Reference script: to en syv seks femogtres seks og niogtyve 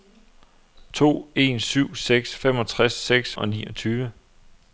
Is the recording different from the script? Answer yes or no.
no